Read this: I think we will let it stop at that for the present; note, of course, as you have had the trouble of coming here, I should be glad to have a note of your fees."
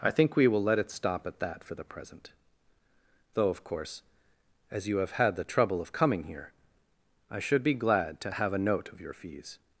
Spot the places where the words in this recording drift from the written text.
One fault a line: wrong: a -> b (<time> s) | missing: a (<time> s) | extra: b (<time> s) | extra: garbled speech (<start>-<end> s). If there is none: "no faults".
wrong: note -> though (3.4 s)